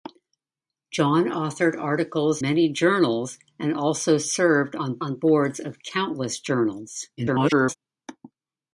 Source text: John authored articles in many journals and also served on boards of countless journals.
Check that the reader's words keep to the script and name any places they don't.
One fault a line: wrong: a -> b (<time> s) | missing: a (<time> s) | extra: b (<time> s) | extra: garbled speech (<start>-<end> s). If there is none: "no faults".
missing: in (2.4 s)
extra: on (5.0 s)
extra: garbled speech (7.2-7.7 s)